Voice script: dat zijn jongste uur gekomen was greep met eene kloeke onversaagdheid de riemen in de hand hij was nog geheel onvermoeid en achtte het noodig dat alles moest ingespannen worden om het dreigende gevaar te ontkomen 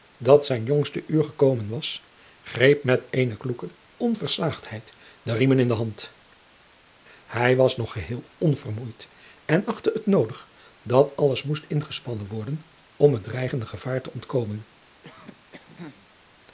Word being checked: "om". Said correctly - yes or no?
yes